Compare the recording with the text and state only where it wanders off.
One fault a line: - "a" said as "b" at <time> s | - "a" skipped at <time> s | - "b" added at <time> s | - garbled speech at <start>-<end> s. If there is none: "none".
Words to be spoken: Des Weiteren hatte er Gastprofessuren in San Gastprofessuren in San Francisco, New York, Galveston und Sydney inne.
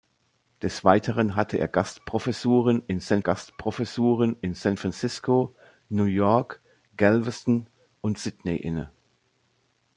none